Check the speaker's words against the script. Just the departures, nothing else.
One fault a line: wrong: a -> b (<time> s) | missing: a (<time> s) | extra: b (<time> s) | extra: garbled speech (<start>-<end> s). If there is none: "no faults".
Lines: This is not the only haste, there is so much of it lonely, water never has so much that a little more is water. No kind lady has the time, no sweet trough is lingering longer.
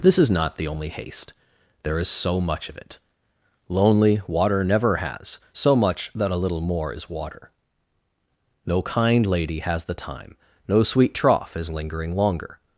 no faults